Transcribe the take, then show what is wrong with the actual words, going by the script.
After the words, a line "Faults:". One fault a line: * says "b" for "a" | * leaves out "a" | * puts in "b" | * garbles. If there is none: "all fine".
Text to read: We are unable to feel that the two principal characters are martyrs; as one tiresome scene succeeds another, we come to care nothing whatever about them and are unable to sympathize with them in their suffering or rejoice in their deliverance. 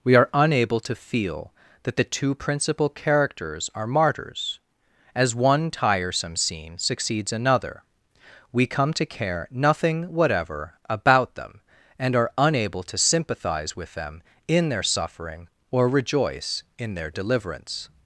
We are unable to feel that the two principal characters are martyrs; as one tiresome scene succeeds another, we come to care nothing whatever about them and are unable to sympathize with them in their suffering or rejoice in their deliverance.
Faults:
all fine